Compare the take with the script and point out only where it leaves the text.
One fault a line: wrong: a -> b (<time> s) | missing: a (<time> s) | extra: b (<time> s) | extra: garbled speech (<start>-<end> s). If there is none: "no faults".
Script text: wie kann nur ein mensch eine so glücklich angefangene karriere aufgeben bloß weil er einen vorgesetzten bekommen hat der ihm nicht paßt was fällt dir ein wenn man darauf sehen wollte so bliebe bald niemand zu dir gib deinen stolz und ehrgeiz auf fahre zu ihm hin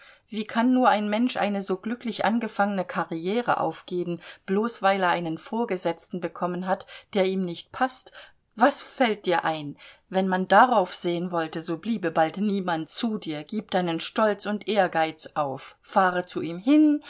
no faults